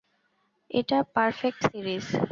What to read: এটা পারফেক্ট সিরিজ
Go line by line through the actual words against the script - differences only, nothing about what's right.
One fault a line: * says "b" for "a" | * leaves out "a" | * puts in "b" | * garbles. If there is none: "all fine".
all fine